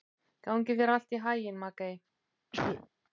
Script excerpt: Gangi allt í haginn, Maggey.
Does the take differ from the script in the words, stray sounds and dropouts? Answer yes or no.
yes